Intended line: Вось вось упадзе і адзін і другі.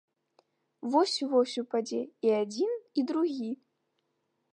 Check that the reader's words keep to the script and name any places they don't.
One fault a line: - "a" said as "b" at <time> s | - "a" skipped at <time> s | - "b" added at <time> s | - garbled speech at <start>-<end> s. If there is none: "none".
none